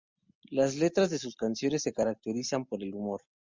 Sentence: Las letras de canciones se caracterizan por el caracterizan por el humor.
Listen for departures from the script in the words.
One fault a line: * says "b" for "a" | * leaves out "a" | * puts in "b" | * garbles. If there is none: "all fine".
* puts in "sus"
* leaves out "caracterizan por el"